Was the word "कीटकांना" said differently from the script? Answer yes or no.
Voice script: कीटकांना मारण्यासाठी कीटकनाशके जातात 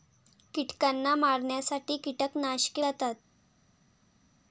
no